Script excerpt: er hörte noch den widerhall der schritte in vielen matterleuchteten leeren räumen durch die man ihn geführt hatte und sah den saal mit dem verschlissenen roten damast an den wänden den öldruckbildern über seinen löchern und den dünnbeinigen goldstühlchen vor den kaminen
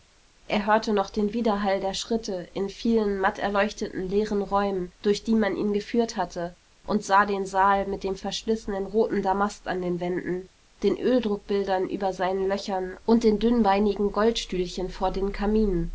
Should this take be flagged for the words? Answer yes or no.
no